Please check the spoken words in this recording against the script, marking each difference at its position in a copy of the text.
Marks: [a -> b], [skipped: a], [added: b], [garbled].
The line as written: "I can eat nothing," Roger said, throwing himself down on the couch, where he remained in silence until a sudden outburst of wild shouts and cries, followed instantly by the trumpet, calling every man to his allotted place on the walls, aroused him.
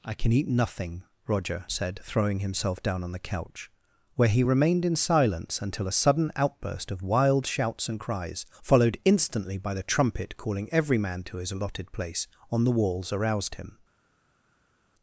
"I can eat nothing," Roger said, throwing himself down on the couch, where he remained in silence until a sudden outburst of wild shouts and cries, followed instantly by the trumpet, calling every man to his allotted place on the walls, aroused him.